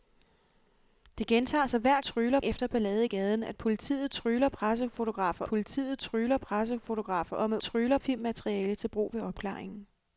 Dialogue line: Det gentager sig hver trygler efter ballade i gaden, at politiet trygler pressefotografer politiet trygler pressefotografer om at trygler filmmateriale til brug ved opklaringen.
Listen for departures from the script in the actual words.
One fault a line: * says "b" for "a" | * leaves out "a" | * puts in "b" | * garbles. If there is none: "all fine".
all fine